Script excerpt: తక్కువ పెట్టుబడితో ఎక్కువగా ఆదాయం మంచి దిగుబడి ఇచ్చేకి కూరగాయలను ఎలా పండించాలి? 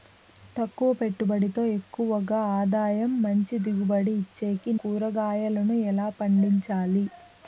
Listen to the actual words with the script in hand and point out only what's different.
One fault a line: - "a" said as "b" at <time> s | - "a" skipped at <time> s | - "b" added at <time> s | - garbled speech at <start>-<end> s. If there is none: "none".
none